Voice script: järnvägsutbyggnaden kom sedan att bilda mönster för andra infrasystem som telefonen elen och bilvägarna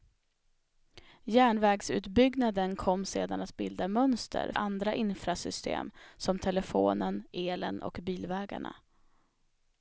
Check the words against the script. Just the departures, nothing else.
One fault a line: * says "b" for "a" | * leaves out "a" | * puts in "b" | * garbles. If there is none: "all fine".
* leaves out "för"